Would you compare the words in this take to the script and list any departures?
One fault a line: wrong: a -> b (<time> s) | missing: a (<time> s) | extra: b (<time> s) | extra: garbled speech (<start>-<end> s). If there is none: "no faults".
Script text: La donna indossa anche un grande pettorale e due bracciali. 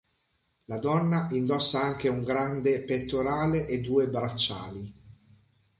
no faults